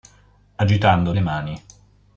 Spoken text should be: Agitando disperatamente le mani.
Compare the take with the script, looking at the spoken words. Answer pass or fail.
fail